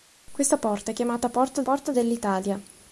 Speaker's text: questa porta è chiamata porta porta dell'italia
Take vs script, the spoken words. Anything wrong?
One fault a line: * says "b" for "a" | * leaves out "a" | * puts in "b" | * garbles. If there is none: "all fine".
all fine